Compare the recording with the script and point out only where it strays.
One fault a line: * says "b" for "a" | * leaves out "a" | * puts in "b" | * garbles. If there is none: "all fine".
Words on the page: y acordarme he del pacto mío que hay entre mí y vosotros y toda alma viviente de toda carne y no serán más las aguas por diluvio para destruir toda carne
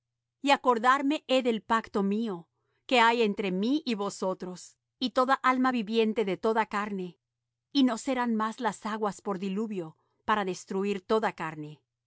all fine